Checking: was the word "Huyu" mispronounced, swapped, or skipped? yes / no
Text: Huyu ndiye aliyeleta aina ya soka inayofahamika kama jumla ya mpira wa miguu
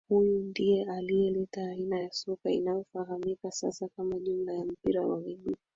no